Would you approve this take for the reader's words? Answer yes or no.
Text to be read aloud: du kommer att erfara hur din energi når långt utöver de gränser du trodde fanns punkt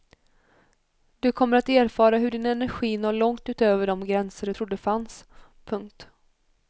yes